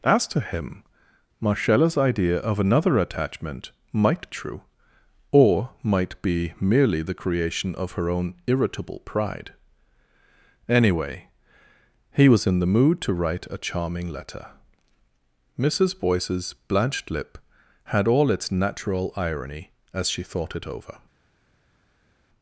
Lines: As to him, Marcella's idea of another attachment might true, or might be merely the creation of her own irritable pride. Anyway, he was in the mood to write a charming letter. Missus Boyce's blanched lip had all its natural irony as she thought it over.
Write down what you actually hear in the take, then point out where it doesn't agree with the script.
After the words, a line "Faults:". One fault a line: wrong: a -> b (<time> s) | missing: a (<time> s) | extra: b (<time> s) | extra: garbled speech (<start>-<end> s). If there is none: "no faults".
As to him, Marcella's idea of another attachment might true, or might be merely the creation of her own irritable pride. Anyway, he was in the mood to write a charming letter. Missus Boyce's blanched lip had all its natural irony as she thought it over.
Faults:
no faults